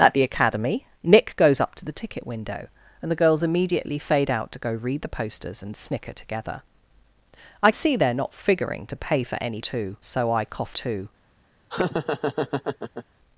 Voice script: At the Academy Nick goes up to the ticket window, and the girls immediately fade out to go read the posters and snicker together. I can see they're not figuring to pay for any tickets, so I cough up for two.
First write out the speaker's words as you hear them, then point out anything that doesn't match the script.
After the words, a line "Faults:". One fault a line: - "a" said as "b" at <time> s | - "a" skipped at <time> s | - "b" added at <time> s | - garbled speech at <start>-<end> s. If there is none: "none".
At the Academy Nick goes up to the ticket window, and the girls immediately fade out to go read the posters and snicker together. I see they're not figuring to pay for any two, so I cough two.
Faults:
- "can" skipped at 7.7 s
- "tickets" said as "two" at 9.6 s
- "up for" skipped at 10.8 s